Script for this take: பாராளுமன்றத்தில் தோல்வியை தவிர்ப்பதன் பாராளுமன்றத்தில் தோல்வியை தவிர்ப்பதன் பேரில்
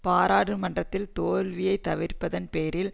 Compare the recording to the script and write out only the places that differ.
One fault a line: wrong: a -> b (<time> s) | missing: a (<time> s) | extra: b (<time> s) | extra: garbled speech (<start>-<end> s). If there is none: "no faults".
missing: பாராளுமன்றத்தில் தோல்வியை தவிர்ப்பதன் (2.5 s)